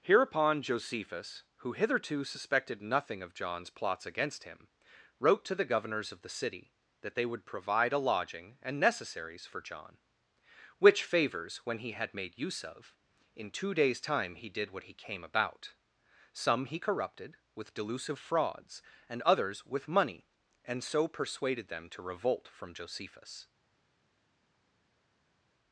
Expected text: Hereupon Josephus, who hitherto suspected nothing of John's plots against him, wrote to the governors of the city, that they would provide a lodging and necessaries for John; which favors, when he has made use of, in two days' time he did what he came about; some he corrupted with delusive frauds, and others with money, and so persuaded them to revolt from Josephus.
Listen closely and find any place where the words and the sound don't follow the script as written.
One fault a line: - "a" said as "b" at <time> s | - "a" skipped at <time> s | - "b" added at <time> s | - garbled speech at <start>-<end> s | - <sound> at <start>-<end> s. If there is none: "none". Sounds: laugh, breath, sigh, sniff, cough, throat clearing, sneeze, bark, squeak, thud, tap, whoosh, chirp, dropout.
- "has" said as "had" at 11.9 s